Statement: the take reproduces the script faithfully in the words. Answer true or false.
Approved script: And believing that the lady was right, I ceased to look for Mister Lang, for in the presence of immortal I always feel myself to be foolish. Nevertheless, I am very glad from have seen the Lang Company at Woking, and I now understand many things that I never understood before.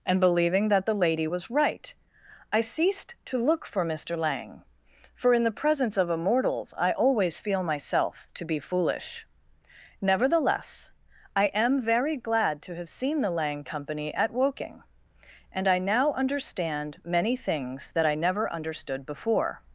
false